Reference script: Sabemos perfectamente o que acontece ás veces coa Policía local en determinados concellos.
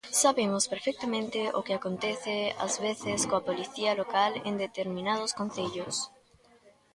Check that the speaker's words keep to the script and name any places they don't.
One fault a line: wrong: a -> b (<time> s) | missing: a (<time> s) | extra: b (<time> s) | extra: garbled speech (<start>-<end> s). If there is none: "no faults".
no faults